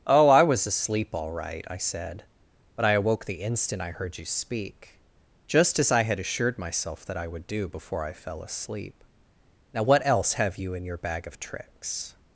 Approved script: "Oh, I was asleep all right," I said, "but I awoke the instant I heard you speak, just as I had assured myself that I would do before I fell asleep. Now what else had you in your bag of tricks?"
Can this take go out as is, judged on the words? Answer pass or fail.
fail